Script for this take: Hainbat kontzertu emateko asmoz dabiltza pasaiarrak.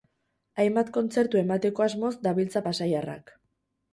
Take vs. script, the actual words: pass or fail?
pass